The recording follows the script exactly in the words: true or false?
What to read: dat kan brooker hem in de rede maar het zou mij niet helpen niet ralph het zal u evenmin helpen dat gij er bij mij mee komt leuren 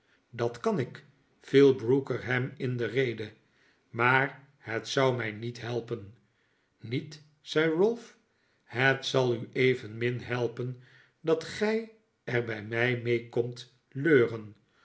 false